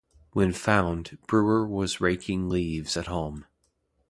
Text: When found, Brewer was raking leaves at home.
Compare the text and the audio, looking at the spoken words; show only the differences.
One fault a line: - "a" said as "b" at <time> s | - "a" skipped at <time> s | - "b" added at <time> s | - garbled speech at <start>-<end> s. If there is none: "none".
none